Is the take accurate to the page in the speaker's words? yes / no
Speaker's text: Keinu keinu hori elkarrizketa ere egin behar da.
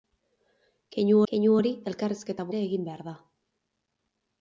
yes